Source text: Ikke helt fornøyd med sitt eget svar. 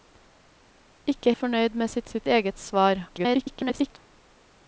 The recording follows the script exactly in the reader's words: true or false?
false